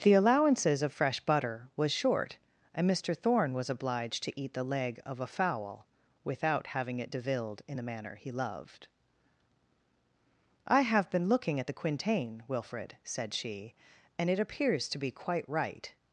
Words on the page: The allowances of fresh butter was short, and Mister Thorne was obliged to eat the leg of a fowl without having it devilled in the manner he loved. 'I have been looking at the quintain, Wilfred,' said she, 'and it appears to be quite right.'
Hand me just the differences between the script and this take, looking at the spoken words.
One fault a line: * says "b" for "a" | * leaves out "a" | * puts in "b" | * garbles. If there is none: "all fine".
all fine